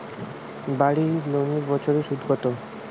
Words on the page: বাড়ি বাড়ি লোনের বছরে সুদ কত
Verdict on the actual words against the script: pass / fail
fail